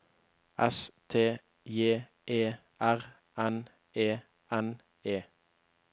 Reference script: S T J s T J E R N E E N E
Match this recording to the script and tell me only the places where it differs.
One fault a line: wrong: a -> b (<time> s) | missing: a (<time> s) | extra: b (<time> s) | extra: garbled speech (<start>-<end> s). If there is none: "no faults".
missing: s T J (2.1 s)
missing: E (4.2 s)